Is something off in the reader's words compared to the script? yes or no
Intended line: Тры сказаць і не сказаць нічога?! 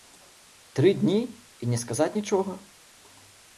yes